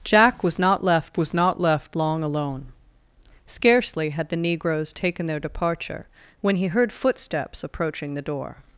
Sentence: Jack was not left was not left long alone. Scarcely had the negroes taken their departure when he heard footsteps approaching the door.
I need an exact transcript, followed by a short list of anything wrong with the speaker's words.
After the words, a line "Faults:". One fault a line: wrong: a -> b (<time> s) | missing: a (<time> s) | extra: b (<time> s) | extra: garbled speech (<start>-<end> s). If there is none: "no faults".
Jack was not left was not left long alone. Scarcely had the negroes taken their departure when he heard footsteps approaching the door.
Faults:
no faults